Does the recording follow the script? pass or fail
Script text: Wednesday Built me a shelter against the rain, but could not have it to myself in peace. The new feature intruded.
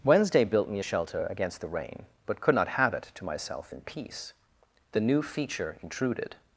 pass